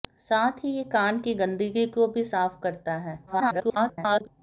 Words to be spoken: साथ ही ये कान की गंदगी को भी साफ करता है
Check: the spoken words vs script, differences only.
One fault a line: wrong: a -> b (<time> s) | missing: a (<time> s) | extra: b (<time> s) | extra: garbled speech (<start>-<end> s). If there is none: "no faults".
extra: garbled speech (3.3-4.3 s)